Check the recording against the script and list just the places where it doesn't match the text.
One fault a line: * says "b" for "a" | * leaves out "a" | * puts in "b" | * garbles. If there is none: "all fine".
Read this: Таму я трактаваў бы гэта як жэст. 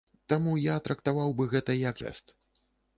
all fine